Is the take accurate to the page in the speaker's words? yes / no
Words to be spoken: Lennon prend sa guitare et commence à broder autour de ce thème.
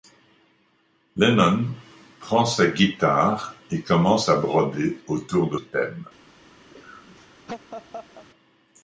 no